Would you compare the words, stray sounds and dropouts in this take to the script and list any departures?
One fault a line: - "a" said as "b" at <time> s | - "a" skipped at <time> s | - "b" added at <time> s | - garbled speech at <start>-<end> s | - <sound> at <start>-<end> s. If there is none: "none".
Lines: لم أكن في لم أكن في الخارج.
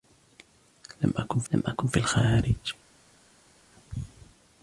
none